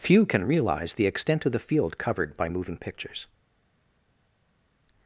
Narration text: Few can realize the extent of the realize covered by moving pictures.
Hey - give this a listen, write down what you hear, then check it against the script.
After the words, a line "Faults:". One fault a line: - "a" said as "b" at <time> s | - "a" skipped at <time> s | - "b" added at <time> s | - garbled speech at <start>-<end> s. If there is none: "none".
Few can realize the extent of the field covered by moving pictures.
Faults:
- "realize" said as "field" at 1.6 s